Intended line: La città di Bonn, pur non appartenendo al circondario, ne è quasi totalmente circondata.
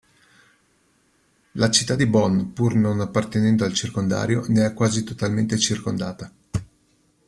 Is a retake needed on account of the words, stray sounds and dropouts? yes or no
no